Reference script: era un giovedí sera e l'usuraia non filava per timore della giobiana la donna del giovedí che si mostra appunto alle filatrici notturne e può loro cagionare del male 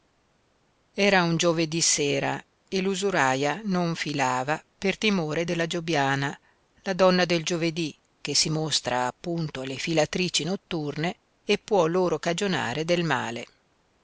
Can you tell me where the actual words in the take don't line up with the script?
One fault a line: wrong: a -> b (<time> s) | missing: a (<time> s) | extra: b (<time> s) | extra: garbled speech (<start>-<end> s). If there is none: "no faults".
no faults